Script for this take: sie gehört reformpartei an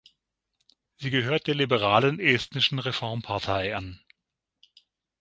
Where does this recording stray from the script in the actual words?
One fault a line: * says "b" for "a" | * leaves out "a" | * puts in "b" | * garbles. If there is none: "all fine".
* puts in "der liberalen estnischen"